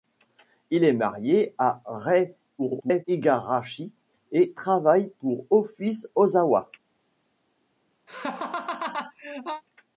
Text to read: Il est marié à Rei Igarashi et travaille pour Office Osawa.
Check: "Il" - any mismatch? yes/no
no